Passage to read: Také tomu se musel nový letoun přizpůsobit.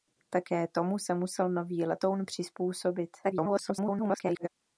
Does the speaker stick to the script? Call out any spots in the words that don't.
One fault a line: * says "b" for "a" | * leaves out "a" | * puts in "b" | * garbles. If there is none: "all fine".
* garbles